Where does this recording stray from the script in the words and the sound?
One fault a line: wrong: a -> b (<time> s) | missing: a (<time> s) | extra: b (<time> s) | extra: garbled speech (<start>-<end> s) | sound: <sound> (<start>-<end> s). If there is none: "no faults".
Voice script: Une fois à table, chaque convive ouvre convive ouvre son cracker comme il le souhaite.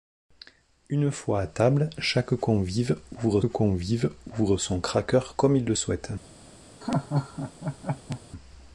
sound: laugh (6.8-8.2 s)